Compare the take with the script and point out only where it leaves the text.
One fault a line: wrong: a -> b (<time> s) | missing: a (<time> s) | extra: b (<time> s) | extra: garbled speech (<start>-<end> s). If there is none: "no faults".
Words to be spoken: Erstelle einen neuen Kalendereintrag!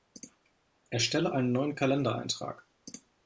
no faults